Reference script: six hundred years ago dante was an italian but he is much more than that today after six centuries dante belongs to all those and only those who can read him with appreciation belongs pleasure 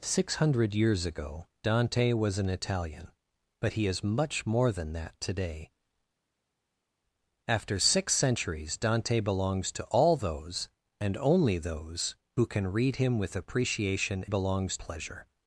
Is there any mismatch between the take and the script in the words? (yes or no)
no